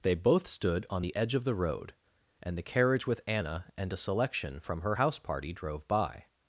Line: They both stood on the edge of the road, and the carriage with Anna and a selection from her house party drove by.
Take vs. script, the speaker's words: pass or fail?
pass